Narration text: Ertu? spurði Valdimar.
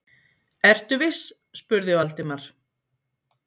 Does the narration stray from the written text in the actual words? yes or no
yes